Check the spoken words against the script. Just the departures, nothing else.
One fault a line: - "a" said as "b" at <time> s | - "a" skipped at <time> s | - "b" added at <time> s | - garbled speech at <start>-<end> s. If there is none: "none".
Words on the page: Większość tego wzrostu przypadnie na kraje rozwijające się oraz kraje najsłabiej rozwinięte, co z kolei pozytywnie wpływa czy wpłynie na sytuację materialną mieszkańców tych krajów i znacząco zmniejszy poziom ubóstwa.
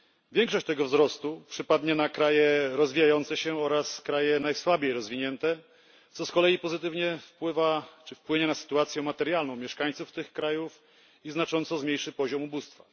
none